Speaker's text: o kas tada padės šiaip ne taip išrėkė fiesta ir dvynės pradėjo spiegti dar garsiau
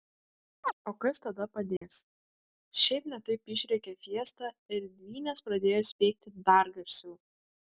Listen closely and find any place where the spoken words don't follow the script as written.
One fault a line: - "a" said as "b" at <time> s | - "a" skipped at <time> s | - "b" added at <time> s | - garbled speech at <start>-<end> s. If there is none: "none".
none